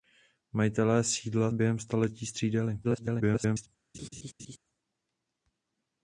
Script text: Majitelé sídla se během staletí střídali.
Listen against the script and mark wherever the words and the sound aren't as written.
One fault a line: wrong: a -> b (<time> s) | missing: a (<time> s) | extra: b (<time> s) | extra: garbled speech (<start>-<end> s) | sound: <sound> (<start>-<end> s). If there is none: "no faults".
missing: se (1.5 s)
extra: garbled speech (2.8-3.7 s)
sound: laugh (3.9-4.6 s)